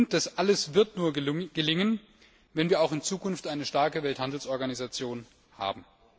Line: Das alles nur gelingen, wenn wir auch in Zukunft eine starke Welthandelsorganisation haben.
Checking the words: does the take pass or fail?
fail